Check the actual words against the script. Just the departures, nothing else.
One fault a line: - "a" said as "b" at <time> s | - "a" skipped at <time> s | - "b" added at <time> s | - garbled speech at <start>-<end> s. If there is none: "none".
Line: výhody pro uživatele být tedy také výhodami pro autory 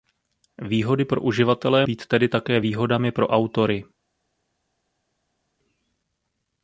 none